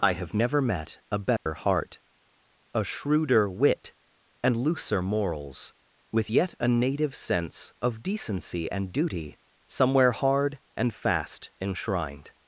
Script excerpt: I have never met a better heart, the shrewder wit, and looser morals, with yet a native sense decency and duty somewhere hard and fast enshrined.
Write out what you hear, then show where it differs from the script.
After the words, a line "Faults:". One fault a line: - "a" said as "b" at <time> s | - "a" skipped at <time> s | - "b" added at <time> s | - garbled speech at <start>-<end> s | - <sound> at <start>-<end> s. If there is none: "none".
I have never met a better heart, a shrewder wit, and looser morals, with yet a native sense of decency and duty somewhere hard and fast enshrined.
Faults:
- dropout at 1.4-1.5 s
- "the" said as "a" at 2.7 s
- "of" added at 7.8 s